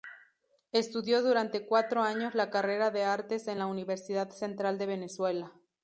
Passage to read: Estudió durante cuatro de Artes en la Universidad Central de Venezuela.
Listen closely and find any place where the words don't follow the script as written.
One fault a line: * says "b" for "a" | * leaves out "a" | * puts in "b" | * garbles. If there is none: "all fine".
* puts in "años la carrera"